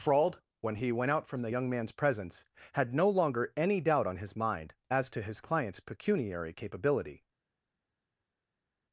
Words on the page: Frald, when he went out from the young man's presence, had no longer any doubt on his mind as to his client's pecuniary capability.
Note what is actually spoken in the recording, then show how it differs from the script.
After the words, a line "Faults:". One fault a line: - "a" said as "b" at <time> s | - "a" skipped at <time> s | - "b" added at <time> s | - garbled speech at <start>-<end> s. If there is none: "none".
Frald, when he went out from the young man's presence, had no longer any doubt on his mind as to his client's pecuniary capability.
Faults:
none